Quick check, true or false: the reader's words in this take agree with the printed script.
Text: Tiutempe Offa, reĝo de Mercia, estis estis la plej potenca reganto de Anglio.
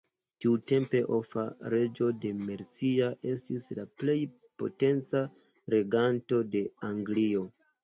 false